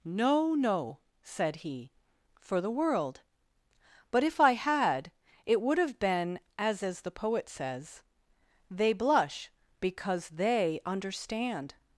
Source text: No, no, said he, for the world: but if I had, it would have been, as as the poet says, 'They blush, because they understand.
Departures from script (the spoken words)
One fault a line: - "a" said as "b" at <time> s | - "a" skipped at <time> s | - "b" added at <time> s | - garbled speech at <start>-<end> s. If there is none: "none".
none